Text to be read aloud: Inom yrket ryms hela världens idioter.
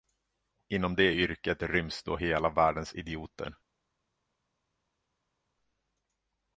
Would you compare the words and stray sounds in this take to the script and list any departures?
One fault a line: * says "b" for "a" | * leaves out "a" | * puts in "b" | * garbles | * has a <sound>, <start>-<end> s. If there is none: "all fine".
* puts in "det"
* puts in "då"